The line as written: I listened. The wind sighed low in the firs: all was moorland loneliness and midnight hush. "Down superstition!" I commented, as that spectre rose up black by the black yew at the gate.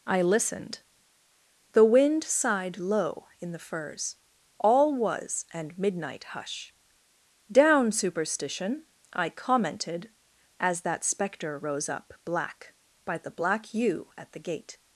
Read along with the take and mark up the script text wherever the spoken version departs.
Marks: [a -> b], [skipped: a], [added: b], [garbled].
I listened. The wind sighed low in the firs: all was [skipped: moorland loneliness] and midnight hush. "Down superstition!" I commented, as that spectre rose up black by the black yew at the gate.